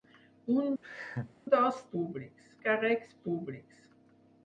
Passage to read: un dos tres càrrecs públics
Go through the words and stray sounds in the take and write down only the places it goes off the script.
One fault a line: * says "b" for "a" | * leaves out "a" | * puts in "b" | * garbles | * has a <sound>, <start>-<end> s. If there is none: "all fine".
* has a laugh, 0.8-1.3 s
* says "públics" for "tres"